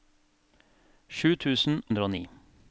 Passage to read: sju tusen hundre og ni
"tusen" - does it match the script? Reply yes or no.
yes